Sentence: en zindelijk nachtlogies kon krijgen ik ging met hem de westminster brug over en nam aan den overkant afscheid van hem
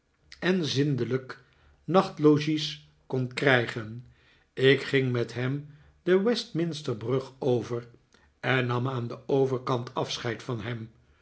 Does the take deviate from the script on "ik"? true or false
false